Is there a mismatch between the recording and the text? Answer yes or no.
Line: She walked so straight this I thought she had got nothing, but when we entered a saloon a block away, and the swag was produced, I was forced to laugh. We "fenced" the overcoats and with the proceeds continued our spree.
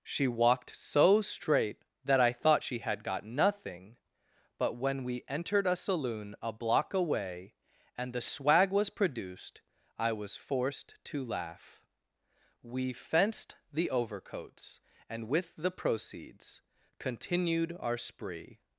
yes